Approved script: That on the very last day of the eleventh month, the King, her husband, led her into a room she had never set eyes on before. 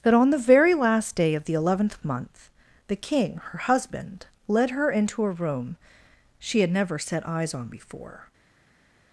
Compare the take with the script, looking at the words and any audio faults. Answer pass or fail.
pass